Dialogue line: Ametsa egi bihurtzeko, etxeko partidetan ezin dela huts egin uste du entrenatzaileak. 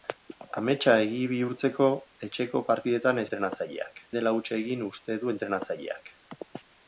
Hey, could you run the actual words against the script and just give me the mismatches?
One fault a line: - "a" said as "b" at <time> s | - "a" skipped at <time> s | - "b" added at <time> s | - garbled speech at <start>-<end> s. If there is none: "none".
- "ezin" said as "entrenatzaileak" at 3.3 s